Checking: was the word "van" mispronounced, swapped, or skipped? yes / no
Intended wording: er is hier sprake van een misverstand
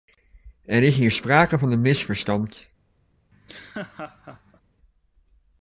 no